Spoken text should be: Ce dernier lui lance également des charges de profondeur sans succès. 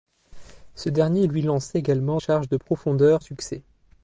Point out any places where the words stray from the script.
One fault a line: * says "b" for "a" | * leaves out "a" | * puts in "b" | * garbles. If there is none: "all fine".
* leaves out "des"
* leaves out "sans"